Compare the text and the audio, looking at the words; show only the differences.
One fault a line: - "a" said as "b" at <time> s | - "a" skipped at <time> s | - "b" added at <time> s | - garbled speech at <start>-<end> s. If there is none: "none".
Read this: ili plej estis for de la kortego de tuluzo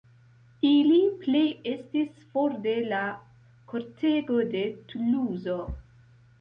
none